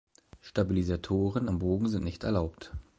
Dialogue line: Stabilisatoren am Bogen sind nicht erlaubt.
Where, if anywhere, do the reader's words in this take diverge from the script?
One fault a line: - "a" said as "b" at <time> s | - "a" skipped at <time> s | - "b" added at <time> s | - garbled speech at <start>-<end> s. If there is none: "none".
none